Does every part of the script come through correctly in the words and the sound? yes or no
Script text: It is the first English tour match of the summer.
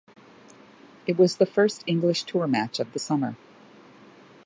no